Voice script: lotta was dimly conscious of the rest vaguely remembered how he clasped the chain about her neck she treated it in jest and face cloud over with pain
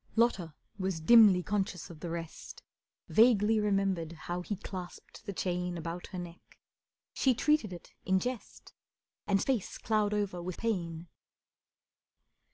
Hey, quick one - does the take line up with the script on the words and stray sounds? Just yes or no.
yes